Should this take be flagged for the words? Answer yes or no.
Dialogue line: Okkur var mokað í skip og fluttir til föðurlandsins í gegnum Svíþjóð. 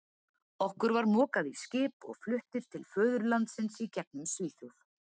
no